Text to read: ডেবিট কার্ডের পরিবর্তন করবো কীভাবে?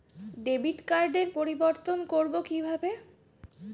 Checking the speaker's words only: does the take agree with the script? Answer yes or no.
yes